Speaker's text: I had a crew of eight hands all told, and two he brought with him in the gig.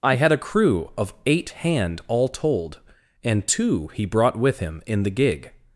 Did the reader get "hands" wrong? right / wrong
wrong